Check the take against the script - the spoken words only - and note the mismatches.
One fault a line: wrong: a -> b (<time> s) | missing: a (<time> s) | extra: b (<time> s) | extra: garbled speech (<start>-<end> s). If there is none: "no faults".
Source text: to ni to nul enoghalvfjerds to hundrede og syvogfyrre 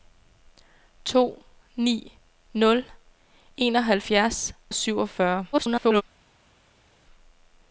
missing: to (2.1 s)
missing: to hundrede (4.5 s)
extra: garbled speech (5.5-6.0 s)